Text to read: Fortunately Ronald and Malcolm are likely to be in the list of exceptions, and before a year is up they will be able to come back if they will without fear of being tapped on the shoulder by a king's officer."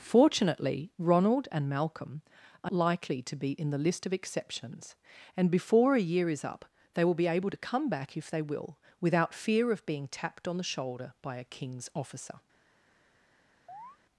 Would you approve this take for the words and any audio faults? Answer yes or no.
no